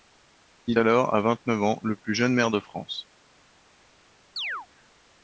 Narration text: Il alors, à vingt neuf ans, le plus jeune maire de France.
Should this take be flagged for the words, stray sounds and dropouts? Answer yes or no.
yes